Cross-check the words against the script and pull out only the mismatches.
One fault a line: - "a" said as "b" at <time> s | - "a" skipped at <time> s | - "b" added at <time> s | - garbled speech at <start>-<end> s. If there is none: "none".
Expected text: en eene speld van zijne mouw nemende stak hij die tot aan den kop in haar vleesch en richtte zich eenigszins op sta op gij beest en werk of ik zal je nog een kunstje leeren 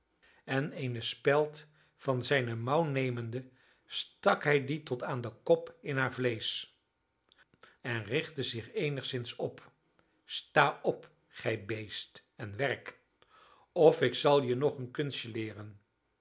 none